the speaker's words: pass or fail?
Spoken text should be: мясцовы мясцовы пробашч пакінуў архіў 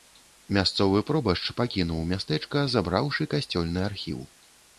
fail